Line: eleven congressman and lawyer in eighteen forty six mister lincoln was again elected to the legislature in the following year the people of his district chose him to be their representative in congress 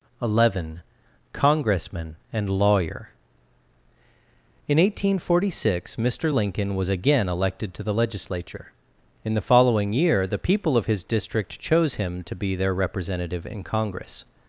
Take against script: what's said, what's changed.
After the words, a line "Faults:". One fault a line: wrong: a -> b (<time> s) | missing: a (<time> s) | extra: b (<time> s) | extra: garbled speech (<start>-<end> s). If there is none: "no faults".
eleven congressman and lawyer in eighteen forty six mister lincoln was again elected to the legislature in the following year the people of his district chose him to be their representative in congress
Faults:
no faults